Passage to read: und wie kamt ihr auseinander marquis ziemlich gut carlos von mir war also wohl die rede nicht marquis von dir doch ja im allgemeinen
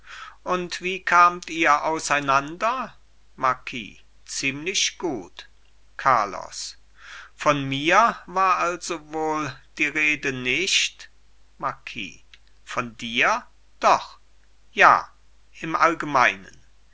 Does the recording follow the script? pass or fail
pass